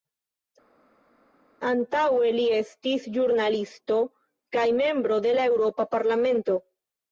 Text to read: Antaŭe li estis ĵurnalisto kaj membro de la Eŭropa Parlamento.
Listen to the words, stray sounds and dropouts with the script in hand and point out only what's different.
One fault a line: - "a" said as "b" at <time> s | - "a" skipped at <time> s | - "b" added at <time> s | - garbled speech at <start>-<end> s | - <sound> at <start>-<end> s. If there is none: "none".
none